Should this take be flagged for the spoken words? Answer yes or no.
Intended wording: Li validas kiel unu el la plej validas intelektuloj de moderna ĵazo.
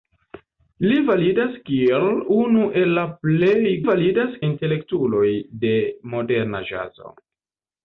no